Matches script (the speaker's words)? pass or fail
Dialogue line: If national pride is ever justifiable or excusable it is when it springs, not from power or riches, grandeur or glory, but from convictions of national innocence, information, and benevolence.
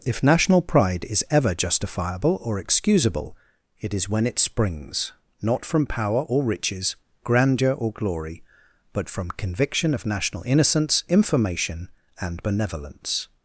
fail